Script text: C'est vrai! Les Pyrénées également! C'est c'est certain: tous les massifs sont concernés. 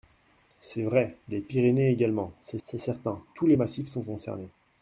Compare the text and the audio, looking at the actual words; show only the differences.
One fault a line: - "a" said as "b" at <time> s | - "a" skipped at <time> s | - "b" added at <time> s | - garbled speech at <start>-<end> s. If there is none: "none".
none